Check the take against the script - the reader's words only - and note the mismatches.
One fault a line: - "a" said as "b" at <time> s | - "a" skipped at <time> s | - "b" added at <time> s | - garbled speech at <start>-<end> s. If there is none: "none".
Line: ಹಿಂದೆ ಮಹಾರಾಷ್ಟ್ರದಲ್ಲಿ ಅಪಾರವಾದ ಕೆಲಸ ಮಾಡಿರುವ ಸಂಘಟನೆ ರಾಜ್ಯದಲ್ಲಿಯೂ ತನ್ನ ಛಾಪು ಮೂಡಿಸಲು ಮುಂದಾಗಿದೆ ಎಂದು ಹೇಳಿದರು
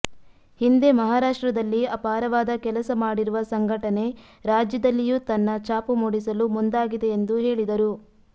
none